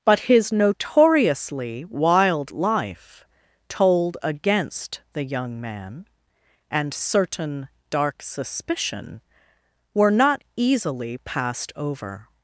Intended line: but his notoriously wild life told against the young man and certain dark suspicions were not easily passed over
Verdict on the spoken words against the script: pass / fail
fail